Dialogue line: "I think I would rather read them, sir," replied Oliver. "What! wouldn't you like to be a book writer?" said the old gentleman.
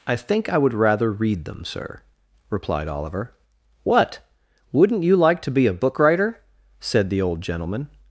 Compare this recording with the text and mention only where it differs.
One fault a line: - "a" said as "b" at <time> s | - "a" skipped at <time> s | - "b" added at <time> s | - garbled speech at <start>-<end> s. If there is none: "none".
none